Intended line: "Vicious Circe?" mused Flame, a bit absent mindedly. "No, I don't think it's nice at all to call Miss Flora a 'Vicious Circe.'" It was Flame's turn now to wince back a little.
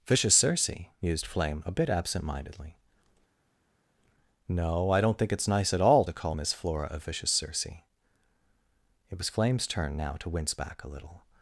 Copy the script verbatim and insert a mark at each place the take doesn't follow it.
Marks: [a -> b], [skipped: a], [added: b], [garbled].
"Vicious Circe?" mused Flame, a bit absent mindedly. "No, I don't think it's nice at all to call Miss Flora a 'Vicious Circe.'" It was Flame's turn now to wince back a little.